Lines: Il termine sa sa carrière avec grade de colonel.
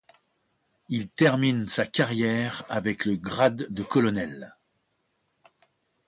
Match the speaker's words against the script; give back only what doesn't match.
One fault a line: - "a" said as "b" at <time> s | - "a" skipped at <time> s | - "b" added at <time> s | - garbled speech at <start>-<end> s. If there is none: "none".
- "sa" skipped at 1.9 s
- "le" added at 3.0 s